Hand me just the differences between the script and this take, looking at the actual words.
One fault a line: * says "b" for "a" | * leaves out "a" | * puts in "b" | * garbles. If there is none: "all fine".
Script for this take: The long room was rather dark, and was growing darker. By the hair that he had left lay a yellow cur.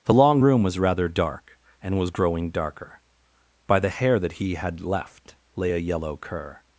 all fine